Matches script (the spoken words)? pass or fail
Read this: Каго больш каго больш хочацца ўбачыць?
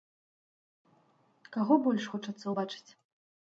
fail